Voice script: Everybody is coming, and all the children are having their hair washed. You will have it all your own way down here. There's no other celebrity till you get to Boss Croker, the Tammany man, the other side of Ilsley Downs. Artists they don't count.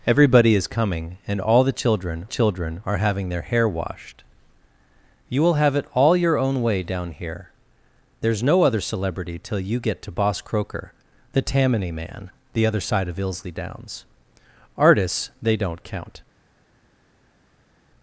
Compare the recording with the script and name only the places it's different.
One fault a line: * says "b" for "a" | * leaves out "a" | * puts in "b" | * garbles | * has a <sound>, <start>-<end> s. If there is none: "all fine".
* puts in "children"